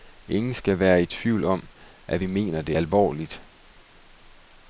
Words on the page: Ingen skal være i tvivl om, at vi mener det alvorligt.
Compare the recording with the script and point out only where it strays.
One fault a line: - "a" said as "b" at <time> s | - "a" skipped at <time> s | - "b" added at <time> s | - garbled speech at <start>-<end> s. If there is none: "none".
none